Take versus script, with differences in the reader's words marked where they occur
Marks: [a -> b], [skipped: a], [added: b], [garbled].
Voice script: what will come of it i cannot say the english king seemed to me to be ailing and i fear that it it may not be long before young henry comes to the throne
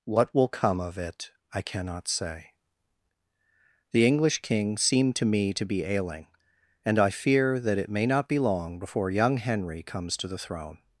what will come of it i cannot say the english king seemed to me to be ailing and i fear that it [skipped: it] may not be long before young henry comes to the throne